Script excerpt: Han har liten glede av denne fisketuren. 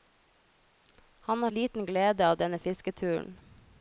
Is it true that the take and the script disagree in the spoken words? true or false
false